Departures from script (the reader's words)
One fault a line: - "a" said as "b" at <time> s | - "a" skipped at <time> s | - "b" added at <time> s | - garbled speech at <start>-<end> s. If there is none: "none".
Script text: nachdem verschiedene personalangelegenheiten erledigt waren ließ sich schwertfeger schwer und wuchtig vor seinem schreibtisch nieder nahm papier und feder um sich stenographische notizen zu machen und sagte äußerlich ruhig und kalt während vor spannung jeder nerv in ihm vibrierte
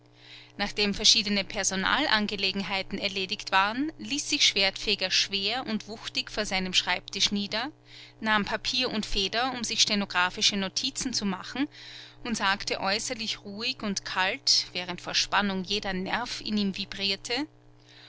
none